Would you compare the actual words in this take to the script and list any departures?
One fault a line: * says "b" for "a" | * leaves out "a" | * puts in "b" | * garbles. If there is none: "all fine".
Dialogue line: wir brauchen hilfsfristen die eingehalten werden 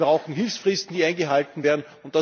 all fine